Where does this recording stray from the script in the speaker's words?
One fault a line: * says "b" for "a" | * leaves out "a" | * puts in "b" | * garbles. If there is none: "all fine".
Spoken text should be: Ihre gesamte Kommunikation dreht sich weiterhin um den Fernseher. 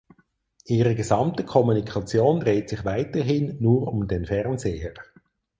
* puts in "nur"